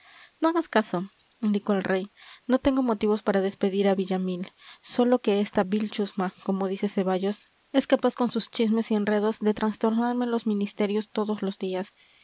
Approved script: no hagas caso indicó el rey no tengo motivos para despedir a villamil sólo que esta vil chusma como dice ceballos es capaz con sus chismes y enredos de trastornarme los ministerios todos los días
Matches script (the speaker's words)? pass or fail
pass